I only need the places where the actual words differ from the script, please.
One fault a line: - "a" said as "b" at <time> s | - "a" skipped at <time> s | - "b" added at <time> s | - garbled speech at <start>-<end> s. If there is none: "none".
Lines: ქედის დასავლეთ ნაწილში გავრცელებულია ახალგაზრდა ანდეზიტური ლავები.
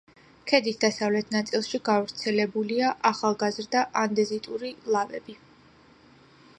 none